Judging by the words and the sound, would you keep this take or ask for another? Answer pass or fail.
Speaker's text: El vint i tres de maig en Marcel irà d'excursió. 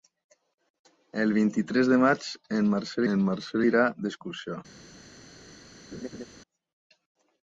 fail